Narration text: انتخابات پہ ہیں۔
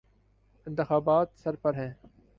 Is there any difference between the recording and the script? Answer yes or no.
yes